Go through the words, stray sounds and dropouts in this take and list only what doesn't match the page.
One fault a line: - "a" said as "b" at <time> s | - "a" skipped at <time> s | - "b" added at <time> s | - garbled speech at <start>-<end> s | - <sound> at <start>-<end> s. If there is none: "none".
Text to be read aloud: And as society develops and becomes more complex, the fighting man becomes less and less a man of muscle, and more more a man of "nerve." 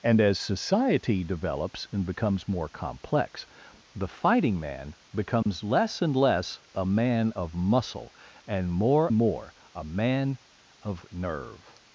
- dropout at 5.4-5.5 s